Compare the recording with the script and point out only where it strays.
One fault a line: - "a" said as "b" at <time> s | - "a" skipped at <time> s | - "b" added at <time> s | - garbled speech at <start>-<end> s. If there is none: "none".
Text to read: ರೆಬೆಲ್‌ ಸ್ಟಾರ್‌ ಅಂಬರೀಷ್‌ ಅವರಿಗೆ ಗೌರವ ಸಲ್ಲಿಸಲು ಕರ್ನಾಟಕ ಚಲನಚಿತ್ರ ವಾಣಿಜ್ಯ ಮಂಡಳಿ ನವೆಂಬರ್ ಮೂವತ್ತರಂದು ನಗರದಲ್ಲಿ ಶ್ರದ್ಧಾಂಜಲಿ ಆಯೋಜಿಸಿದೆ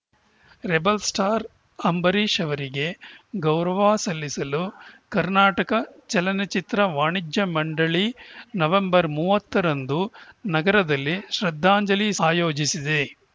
none